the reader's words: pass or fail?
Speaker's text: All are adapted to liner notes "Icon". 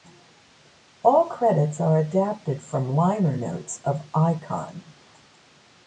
fail